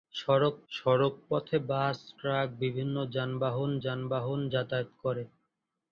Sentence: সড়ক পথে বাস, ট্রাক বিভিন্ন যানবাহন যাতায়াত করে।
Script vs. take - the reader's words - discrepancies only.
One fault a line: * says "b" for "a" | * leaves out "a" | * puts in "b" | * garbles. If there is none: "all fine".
* puts in "সড়ক"
* puts in "যানবাহন"